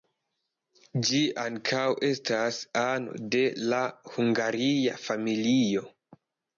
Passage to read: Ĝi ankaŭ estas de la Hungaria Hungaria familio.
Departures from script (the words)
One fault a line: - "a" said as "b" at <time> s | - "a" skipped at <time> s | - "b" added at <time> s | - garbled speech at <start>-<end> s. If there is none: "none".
- "ano" added at 2.9 s
- "Hungaria" skipped at 5.0 s